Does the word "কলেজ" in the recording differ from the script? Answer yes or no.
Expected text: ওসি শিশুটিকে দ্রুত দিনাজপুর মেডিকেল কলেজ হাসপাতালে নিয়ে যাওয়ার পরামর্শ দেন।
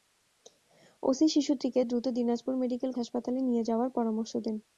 yes